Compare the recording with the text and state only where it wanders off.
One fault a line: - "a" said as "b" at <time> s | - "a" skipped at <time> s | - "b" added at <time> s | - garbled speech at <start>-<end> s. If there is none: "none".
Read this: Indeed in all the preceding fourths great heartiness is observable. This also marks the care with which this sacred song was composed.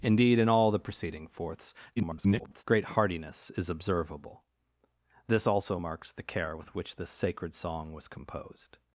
- garbled speech at 2.0-2.6 s